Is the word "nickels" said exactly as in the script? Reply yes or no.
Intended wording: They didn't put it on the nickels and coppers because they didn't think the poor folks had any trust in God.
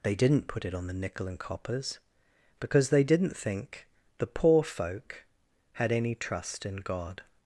no